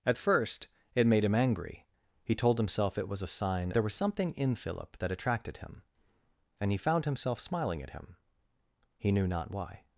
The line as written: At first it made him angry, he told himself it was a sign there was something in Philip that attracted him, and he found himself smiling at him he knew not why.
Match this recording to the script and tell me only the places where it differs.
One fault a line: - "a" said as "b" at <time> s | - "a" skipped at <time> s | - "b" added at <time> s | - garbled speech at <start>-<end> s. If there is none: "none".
none